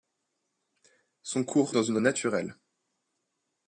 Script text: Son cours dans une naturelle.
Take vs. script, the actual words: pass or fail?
pass